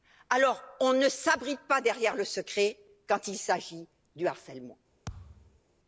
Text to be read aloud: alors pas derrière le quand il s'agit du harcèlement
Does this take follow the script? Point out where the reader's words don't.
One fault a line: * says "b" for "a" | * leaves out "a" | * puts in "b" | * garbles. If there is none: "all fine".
* puts in "on ne s'abrite"
* puts in "secret"